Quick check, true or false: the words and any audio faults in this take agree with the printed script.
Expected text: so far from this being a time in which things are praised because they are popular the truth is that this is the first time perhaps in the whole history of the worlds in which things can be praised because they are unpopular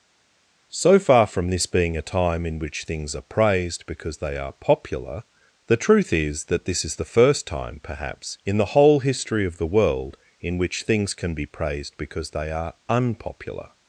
false